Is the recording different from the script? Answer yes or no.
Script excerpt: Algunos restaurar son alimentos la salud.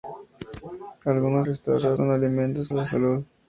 no